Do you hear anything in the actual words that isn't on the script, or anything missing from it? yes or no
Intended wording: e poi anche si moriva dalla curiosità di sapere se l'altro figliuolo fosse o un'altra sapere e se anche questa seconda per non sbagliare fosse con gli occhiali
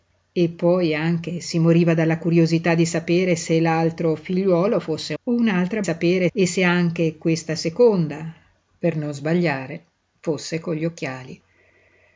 no